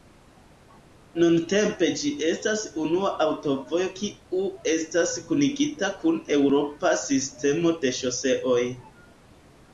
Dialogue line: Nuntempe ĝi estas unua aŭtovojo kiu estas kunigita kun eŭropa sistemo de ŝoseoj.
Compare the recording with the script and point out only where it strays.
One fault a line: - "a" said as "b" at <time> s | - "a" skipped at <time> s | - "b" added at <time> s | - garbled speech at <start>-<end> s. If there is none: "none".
none